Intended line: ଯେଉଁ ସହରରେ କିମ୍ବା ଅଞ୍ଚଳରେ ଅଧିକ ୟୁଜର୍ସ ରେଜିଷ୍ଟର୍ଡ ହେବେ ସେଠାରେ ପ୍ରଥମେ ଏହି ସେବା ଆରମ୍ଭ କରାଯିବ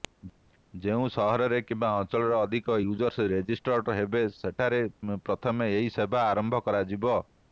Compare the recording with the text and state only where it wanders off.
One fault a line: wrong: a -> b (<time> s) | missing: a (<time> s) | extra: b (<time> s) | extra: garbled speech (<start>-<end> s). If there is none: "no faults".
no faults